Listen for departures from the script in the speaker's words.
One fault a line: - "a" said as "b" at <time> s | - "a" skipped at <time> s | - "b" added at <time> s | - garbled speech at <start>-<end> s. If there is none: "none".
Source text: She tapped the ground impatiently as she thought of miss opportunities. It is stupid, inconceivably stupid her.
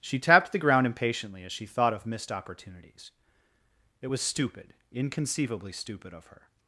- "miss" said as "missed" at 2.1 s
- "is" said as "was" at 4.0 s
- "of" added at 6.1 s